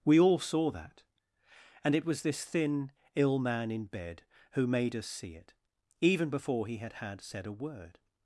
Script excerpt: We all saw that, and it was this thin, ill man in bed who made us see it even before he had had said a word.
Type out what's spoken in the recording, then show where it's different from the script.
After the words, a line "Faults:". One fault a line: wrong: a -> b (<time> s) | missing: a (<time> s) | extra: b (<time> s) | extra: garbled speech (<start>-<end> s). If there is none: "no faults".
We all saw that, and it was this thin, ill man in bed who made us see it even before he had had said a word.
Faults:
no faults